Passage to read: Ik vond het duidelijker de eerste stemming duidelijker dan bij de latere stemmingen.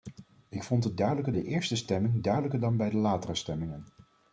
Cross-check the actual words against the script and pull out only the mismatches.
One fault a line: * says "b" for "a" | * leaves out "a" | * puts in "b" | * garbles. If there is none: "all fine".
all fine